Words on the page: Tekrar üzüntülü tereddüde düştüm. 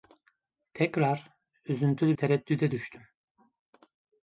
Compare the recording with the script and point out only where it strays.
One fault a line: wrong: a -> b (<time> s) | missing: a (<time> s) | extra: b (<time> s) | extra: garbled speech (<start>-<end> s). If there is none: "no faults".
no faults